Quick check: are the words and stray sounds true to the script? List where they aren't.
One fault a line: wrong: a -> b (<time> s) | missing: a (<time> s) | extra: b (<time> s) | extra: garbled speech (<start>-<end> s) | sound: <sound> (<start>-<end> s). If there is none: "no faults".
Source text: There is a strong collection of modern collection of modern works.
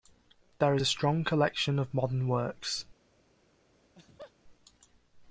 missing: collection of modern (2.3 s)
sound: laugh (3.8-4.3 s)